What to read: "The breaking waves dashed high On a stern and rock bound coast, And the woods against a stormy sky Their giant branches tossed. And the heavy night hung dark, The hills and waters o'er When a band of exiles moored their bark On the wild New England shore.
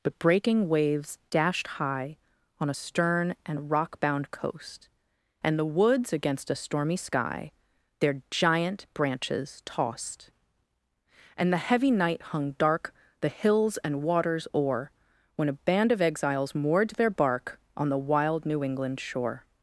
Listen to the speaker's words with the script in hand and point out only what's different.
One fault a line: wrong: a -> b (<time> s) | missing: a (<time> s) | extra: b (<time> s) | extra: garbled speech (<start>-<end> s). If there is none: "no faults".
wrong: The -> But (0.0 s)